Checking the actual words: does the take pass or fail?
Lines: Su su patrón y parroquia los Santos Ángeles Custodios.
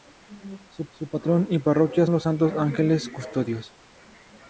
pass